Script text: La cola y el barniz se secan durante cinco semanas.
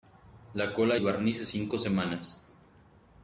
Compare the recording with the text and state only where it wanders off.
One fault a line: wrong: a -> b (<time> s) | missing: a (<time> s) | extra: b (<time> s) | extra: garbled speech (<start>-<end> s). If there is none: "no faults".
missing: y (1.0 s)
missing: secan durante (1.4 s)